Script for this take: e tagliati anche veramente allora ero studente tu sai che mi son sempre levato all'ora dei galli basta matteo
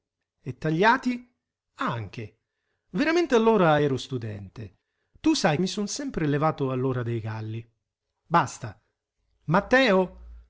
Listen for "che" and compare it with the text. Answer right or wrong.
wrong